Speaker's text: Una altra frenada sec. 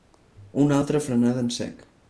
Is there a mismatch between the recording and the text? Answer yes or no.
yes